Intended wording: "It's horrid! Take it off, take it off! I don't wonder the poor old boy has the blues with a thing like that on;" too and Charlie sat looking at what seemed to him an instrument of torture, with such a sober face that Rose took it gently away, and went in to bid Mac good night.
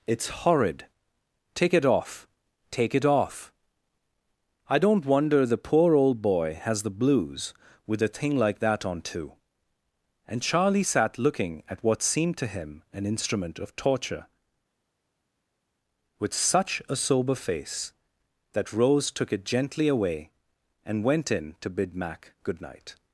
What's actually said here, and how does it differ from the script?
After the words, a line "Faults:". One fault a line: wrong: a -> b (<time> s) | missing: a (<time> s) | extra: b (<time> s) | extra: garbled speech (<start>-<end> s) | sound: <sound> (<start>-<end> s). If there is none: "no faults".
"It's horrid! Take it off, take it off! I don't wonder the poor old boy has the blues with a thing like that on;" too and Charlie sat looking at what seemed to him an instrument of torture, with such a sober face that Rose took it gently away, and went in to bid Mac good night.
Faults:
no faults